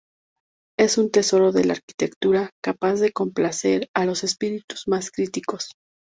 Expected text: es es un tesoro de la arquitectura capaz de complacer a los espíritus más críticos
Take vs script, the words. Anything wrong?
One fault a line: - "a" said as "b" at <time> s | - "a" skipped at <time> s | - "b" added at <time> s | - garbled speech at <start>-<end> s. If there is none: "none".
- "es" skipped at 1.0 s